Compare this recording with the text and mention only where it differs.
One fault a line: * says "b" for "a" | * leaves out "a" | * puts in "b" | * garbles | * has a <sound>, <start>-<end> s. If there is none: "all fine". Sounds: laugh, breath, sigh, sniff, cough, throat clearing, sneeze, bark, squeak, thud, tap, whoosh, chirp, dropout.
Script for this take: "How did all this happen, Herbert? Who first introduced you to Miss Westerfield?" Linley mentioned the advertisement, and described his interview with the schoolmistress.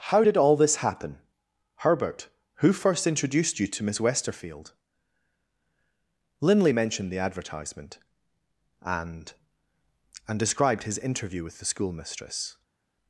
* puts in "and"